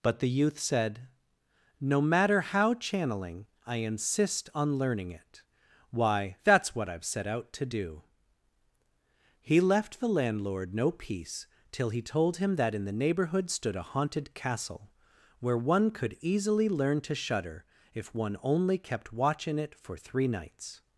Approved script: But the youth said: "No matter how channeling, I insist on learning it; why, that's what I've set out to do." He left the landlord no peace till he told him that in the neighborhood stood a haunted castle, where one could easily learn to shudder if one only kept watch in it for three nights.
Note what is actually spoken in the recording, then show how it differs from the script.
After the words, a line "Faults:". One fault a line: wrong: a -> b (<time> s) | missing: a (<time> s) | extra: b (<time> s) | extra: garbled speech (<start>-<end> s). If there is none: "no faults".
But the youth said: "No matter how channeling, I insist on learning it; why, that's what I've set out to do." He left the landlord no peace till he told him that in the neighborhood stood a haunted castle, where one could easily learn to shudder if one only kept watch in it for three nights.
Faults:
no faults